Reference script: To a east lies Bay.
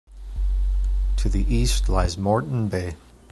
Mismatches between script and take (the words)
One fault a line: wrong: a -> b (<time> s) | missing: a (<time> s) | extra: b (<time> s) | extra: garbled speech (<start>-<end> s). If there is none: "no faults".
wrong: a -> the (1.3 s)
extra: Moreton (2.2 s)